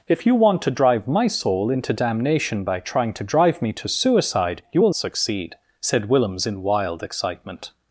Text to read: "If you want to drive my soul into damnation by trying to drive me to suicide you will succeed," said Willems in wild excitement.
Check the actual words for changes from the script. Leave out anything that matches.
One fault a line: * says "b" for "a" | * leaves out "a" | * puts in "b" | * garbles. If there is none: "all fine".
all fine